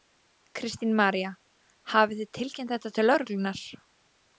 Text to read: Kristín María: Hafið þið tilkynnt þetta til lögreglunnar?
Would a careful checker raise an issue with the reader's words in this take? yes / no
no